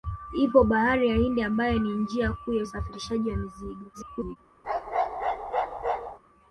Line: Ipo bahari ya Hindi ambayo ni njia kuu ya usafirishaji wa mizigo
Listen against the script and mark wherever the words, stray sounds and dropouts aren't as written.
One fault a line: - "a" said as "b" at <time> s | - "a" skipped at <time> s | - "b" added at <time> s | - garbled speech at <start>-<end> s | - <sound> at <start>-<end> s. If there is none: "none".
- garbled speech at 3.9-4.4 s
- bark at 4.6-6.2 s